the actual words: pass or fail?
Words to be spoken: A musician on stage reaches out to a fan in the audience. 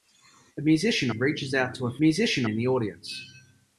fail